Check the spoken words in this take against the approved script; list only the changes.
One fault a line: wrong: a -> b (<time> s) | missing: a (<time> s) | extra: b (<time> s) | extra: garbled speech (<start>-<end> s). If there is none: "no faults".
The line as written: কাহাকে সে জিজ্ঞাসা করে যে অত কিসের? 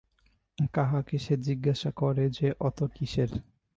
no faults